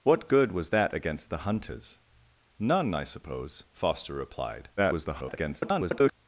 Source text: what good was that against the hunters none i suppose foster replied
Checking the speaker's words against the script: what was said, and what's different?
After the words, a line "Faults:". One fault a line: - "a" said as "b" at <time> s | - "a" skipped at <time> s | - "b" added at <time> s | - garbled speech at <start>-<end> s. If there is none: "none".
what good was that against the hunters none i suppose foster replied [garbled]
Faults:
- garbled speech at 4.8-6.1 s